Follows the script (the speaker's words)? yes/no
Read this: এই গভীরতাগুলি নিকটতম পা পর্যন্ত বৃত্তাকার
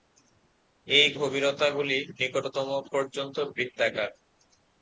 no